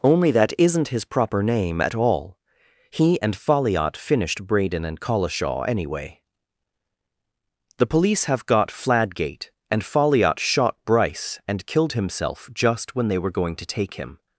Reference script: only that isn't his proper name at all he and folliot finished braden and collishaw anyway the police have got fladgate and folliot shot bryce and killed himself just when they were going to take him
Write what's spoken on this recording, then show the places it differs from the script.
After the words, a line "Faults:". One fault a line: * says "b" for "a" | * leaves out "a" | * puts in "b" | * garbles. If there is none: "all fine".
only that isn't his proper name at all he and folliot finished braden and collishaw anyway the police have got fladgate and folliot shot bryce and killed himself just when they were going to take him
Faults:
all fine